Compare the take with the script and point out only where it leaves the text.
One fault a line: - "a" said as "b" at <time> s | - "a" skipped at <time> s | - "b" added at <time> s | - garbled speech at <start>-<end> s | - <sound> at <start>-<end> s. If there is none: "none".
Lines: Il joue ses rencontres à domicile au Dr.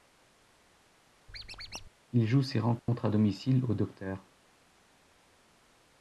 - squeak at 1.3-1.9 s
- dropout at 2.8-2.9 s